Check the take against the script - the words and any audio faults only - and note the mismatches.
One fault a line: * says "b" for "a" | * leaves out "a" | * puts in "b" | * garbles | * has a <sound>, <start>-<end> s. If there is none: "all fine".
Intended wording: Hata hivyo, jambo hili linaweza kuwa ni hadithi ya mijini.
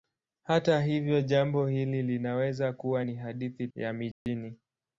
* has a dropout, 4.1-4.3 s